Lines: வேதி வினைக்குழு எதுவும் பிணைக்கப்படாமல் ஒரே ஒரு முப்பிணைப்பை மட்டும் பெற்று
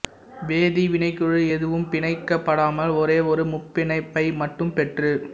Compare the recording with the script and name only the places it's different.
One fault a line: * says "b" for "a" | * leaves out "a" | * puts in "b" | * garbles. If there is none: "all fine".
all fine